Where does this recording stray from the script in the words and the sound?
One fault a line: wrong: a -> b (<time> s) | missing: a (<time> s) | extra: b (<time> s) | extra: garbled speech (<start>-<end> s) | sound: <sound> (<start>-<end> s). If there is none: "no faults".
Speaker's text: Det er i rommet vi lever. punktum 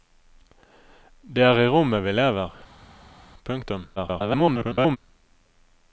extra: garbled speech (4.0-5.0 s)